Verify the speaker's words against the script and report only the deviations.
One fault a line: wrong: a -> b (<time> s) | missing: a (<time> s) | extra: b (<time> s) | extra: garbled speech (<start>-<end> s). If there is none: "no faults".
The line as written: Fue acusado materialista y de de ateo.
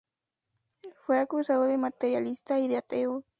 extra: de (1.6 s)
missing: de (2.8 s)